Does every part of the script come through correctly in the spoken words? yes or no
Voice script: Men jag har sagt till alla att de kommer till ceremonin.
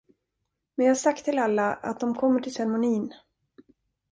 yes